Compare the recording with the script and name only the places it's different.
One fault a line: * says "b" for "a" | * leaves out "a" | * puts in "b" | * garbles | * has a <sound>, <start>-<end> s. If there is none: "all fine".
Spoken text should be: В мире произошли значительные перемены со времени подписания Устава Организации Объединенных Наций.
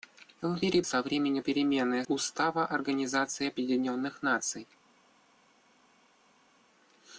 * leaves out "произошли значительные перемены"
* says "перемены" for "подписания"